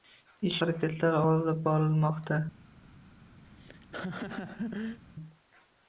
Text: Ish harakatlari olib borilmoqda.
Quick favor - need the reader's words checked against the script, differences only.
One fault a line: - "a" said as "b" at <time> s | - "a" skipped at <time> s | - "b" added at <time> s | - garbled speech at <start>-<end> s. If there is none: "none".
none